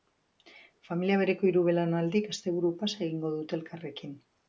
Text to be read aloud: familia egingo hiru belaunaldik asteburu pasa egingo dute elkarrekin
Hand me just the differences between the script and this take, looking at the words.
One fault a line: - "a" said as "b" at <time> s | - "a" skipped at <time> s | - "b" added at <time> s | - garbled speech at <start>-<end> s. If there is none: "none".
- "egingo" said as "bereko" at 1.2 s